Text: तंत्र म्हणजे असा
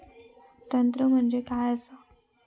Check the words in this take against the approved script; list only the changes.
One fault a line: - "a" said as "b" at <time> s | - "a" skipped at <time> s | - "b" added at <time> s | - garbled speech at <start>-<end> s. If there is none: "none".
- "काय" added at 1.4 s